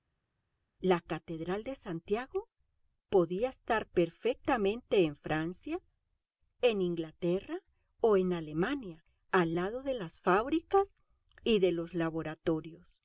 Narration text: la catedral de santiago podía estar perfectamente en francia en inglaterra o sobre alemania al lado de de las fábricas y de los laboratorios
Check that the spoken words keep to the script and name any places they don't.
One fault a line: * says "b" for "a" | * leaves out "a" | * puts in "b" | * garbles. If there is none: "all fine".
* says "en" for "sobre"
* leaves out "de"